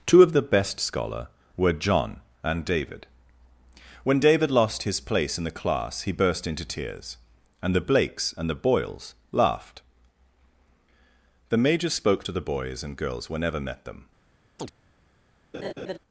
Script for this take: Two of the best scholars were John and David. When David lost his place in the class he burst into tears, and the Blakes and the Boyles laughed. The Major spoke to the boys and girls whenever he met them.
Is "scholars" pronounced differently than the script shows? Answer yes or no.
yes